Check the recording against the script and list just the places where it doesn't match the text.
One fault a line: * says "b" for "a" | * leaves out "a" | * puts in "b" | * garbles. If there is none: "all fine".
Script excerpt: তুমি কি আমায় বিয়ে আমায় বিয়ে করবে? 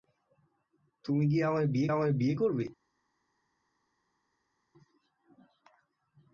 all fine